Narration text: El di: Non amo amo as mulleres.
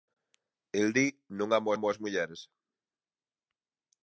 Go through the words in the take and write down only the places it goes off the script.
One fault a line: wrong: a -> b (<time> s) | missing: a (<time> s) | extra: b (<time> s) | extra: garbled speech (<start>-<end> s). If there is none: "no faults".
no faults